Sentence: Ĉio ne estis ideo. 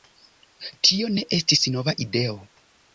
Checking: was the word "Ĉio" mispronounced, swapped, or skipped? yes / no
yes